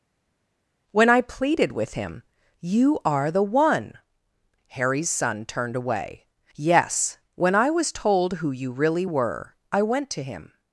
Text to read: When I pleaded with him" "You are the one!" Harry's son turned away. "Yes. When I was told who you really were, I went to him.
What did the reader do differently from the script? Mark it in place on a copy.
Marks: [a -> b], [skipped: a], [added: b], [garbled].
When I pleaded with him" "You are the one!" Harry's son turned away. "Yes. When I was told who you really were, I went to him.